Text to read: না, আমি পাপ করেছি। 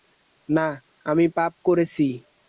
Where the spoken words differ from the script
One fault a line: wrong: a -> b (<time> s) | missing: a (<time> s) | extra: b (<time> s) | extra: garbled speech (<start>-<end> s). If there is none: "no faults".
no faults